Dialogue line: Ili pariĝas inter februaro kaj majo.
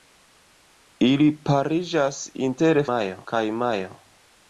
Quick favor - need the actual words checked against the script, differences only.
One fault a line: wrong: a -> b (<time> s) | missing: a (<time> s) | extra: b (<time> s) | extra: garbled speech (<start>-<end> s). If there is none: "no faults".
wrong: februaro -> majo (2.9 s)